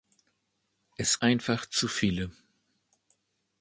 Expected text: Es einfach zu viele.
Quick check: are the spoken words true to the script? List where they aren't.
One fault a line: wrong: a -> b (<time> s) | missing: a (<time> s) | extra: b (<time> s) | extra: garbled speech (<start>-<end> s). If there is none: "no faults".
no faults